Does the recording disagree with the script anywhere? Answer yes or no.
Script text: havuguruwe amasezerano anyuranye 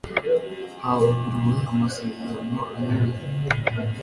no